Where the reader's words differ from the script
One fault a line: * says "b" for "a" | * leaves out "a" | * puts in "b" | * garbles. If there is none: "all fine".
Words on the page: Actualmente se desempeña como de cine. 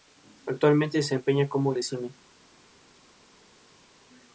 all fine